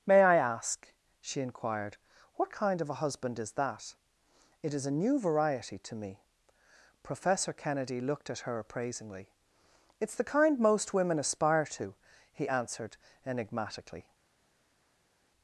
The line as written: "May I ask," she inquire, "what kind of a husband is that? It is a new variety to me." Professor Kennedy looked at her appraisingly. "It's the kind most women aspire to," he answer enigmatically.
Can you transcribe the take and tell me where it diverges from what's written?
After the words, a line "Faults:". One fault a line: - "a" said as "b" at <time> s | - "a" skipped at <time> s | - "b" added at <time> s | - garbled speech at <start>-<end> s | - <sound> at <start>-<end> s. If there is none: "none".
"May I ask," she inquired, "what kind of a husband is that? It is a new variety to me." Professor Kennedy looked at her appraisingly. "It's the kind most women aspire to," he answered enigmatically.
Faults:
- "inquire" said as "inquired" at 1.4 s
- "answer" said as "answered" at 12.5 s